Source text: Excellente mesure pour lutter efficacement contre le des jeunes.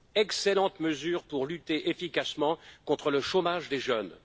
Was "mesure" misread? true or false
false